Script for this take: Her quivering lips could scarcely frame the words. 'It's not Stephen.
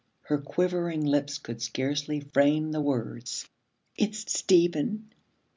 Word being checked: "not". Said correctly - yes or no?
no